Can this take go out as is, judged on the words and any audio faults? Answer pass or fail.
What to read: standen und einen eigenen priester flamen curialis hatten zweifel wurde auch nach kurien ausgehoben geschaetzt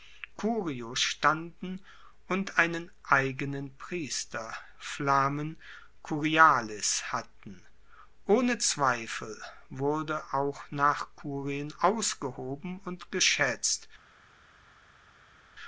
fail